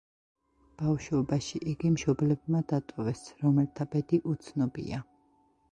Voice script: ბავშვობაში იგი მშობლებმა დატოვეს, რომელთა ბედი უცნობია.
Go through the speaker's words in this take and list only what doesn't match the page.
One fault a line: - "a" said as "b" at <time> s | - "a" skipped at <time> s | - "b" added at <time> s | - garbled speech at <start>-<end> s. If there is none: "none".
none